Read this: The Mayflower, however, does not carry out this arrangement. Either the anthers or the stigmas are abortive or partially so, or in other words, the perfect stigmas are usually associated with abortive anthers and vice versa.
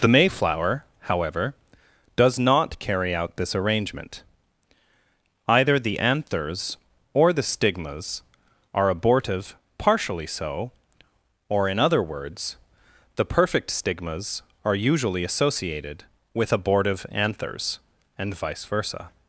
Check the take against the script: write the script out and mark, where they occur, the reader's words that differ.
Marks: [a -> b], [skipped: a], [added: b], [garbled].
The Mayflower, however, does not carry out this arrangement. Either the anthers or the stigmas are abortive [skipped: or] partially so, or in other words, the perfect stigmas are usually associated with abortive anthers and vice versa.